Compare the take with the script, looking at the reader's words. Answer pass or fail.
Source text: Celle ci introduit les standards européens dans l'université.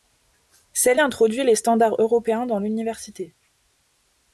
fail